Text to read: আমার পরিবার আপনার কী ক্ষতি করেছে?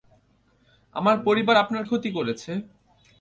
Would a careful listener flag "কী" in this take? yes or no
yes